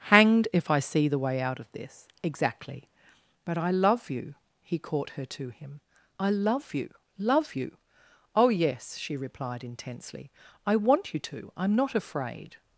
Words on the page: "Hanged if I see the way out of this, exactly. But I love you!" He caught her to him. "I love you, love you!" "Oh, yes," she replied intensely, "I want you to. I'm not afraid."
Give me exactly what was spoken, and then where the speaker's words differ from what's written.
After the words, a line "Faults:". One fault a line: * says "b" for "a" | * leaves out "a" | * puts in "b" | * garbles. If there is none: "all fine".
"Hanged if I see the way out of this, exactly. But I love you!" He caught her to him. "I love you, love you!" "Oh, yes," she replied intensely, "I want you to. I'm not afraid."
Faults:
all fine